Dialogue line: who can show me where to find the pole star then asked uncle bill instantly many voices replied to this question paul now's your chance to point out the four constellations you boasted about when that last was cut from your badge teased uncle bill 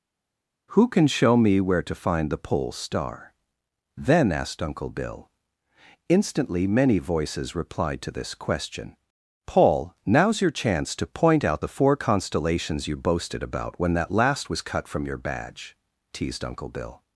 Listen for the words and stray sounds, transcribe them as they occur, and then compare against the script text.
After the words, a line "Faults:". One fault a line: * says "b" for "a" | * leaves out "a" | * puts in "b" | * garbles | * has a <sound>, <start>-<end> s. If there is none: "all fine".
who can show me where to find the pole star then asked uncle bill instantly many voices replied to this question paul now's your chance to point out the four constellations you boasted about when that last was cut from your badge teased uncle bill
Faults:
all fine